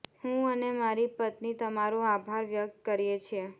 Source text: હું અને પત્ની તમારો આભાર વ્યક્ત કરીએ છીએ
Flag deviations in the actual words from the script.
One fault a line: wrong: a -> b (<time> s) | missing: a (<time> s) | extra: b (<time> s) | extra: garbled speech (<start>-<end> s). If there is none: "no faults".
extra: મારી (0.8 s)